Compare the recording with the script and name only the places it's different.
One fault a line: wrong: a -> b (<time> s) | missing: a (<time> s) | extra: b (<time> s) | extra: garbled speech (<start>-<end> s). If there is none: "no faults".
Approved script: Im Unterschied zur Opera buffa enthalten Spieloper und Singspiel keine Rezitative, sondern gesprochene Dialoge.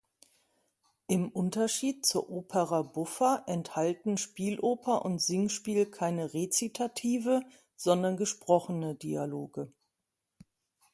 no faults